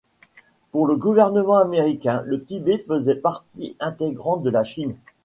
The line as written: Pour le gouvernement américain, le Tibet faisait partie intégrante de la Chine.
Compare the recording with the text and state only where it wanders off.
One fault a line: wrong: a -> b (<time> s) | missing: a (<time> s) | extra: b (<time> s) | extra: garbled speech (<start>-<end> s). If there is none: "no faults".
no faults